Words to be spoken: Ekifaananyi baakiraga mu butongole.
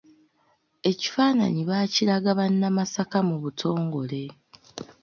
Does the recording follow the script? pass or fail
fail